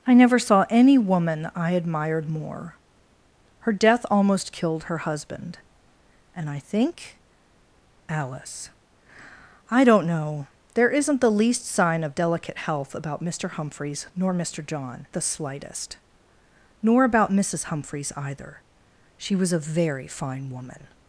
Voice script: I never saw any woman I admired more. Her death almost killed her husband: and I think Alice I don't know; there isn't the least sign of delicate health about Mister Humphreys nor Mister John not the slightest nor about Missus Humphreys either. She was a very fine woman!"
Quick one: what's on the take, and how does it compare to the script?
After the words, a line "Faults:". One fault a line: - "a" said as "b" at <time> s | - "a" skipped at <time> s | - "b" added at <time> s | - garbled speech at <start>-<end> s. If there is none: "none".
I never saw any woman I admired more. Her death almost killed her husband: and I think Alice I don't know; there isn't the least sign of delicate health about Mister Humphreys nor Mister John the slightest nor about Missus Humphreys either. She was a very fine woman!"
Faults:
- "not" skipped at 15.1 s